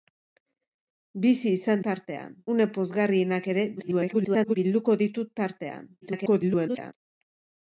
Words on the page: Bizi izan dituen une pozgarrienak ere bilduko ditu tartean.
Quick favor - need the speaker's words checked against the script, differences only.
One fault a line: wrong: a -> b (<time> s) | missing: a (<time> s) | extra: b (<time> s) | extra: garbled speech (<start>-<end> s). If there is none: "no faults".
wrong: dituen -> tartean (1.9 s)
extra: garbled speech (3.8-4.6 s)
extra: garbled speech (6.0-6.9 s)